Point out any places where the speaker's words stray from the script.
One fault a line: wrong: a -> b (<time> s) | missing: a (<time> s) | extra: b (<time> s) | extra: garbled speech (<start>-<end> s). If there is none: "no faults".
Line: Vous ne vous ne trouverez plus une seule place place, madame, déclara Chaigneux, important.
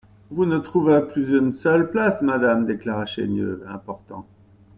missing: vous ne (0.6 s)
missing: place (2.2 s)